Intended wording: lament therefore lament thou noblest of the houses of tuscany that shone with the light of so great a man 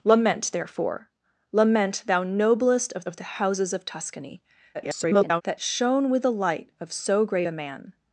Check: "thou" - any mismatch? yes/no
no